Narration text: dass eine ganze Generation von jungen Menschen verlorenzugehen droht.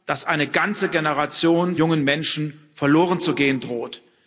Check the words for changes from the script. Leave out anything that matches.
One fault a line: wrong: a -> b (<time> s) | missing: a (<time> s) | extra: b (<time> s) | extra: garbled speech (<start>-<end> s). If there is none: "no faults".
missing: von (1.8 s)